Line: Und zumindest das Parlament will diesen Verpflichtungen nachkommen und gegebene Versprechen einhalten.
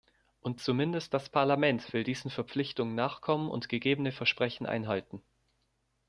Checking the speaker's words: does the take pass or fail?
pass